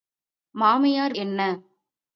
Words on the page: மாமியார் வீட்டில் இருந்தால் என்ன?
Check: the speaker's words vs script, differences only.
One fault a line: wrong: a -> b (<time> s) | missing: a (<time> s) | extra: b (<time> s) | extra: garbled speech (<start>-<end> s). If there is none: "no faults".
missing: வீட்டில் இருந்தால் (1.1 s)